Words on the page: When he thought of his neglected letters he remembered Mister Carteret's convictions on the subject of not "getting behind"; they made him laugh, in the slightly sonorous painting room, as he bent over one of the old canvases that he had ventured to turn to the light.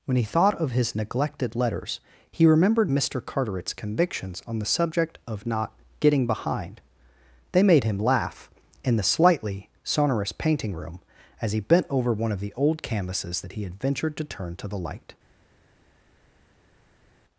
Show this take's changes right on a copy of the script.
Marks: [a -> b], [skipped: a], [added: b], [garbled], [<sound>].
When he thought of his neglected letters he remembered Mister Carteret's convictions on the subject of not "getting behind"; they made him laugh, in the slightly sonorous painting room, as he bent over one of the old canvases that he had ventured to turn to the light.